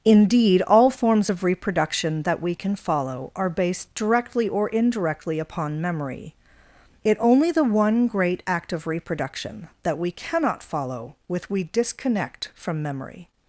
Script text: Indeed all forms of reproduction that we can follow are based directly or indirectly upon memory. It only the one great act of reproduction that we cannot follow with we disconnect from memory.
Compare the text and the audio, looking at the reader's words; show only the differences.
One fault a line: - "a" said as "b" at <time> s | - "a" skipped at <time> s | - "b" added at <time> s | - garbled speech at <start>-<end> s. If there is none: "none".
none